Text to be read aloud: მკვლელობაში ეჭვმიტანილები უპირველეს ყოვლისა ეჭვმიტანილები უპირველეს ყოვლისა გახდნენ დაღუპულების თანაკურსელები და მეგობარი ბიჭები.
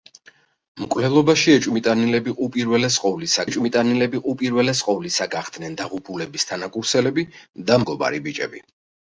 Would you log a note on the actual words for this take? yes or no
no